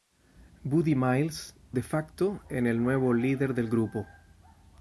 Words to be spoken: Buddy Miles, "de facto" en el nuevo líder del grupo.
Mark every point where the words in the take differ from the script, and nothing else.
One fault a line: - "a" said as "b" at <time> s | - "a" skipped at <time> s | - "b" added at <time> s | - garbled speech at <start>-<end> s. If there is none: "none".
none